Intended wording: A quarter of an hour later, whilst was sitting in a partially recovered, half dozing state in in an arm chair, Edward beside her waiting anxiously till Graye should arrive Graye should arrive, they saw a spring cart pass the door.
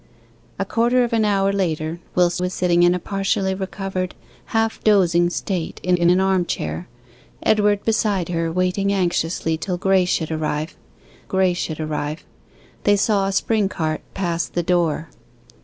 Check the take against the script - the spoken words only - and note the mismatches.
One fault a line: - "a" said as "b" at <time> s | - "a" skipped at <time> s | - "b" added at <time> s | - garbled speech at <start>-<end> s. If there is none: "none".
none